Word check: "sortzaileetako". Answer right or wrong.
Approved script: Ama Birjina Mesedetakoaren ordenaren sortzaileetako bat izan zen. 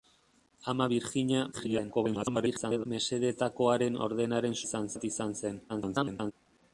wrong